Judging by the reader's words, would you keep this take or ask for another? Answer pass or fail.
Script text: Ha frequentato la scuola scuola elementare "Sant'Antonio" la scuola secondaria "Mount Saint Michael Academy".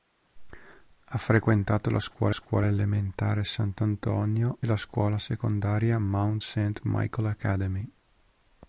pass